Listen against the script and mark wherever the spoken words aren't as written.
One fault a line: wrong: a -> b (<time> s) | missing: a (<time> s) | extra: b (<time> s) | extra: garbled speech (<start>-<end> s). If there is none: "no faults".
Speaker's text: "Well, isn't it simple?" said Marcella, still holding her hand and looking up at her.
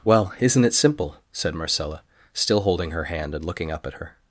no faults